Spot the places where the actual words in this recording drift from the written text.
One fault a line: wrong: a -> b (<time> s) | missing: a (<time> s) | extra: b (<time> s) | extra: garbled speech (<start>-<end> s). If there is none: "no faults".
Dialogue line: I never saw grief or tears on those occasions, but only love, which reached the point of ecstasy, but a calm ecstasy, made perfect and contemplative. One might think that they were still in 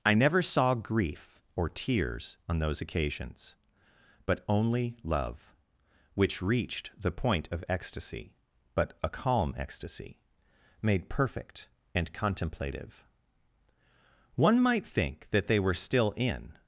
no faults